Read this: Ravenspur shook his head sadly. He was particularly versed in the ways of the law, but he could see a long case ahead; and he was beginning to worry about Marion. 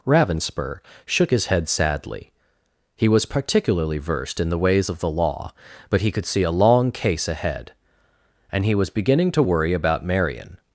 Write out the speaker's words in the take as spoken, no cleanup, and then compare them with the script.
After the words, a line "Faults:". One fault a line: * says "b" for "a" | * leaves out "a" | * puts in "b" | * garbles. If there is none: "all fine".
Ravenspur shook his head sadly. He was particularly versed in the ways of the law, but he could see a long case ahead; and he was beginning to worry about Marion.
Faults:
all fine